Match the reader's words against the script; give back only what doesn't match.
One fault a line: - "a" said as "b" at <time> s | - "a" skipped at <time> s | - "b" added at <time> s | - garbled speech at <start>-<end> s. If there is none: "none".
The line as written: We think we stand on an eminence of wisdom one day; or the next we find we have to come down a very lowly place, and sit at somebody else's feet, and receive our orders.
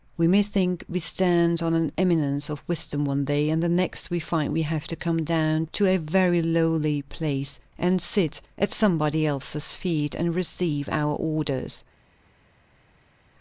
- "may" added at 0.3 s
- "or" said as "and" at 3.5 s
- "to" added at 5.7 s